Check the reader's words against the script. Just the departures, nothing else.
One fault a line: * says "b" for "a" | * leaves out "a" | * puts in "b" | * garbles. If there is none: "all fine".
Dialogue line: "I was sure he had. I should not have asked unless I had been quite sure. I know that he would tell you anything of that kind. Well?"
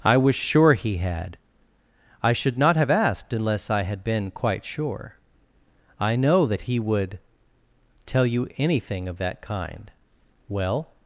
all fine